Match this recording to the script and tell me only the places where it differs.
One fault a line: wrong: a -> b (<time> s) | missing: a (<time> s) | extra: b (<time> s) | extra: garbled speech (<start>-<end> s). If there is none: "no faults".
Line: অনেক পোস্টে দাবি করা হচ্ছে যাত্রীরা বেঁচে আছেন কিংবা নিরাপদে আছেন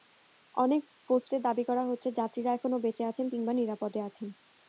extra: এখনো (2.5 s)